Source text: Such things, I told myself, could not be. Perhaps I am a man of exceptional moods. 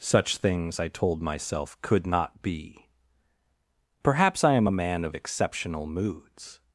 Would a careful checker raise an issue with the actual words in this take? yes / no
no